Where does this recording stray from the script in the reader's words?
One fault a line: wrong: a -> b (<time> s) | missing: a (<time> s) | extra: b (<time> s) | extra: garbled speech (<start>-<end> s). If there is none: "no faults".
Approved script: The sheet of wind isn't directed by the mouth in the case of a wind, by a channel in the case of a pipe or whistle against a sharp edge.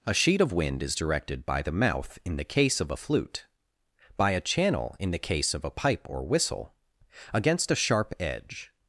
wrong: The -> A (0.0 s)
wrong: isn't -> is (0.8 s)
wrong: wind -> flute (3.0 s)